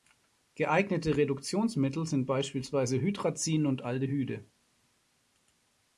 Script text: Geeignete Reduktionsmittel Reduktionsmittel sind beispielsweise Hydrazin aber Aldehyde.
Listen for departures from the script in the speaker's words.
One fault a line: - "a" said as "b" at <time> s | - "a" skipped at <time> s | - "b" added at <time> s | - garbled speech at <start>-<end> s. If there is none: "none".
- "Reduktionsmittel" skipped at 2.1 s
- "aber" said as "und" at 3.7 s